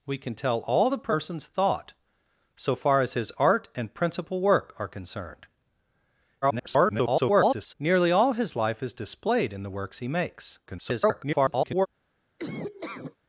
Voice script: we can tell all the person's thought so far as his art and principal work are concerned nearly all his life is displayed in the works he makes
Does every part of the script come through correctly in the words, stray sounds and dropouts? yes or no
no